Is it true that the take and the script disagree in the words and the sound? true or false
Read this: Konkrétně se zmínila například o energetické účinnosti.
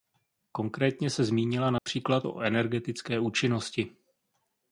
true